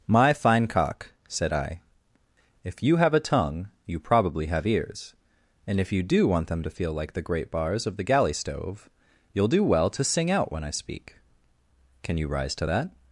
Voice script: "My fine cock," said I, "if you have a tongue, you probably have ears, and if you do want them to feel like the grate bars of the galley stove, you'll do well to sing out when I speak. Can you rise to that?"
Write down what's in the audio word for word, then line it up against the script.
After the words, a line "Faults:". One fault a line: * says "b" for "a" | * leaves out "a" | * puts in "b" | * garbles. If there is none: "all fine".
"My fine cock," said I, "if you have a tongue, you probably have ears, and if you do want them to feel like the grate bars of the galley stove, you'll do well to sing out when I speak. Can you rise to that?"
Faults:
all fine